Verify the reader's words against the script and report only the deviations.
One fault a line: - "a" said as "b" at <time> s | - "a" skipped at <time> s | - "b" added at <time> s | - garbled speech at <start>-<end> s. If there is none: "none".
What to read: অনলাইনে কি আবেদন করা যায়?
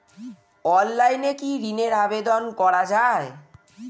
- "ঋনের" added at 1.7 s